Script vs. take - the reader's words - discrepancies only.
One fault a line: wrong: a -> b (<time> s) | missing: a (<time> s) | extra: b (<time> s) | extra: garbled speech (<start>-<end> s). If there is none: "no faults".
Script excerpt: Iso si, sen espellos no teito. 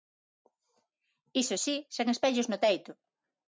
no faults